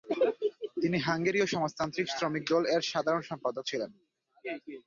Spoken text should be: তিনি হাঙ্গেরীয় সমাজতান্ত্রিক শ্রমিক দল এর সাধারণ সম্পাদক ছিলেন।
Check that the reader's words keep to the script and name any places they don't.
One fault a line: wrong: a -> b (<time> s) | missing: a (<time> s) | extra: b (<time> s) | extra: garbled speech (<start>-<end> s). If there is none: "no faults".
no faults